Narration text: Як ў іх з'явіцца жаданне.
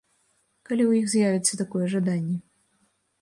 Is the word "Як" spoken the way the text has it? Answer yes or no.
no